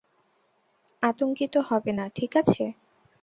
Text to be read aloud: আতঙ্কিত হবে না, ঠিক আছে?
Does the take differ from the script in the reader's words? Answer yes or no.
no